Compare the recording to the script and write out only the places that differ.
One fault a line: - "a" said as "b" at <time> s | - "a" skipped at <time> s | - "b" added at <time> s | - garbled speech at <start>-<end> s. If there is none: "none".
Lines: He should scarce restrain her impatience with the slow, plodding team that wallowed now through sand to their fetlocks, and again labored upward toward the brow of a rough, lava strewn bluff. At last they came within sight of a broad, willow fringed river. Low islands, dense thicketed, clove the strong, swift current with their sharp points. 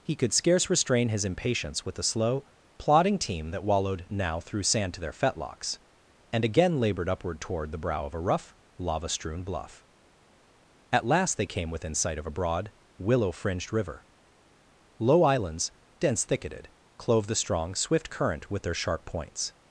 - "should" said as "could" at 0.1 s
- "her" said as "his" at 1.1 s